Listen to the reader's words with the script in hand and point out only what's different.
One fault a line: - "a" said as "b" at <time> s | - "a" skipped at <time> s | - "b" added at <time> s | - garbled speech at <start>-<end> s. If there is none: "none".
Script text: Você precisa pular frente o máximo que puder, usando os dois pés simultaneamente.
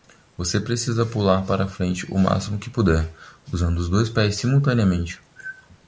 - "para" added at 1.4 s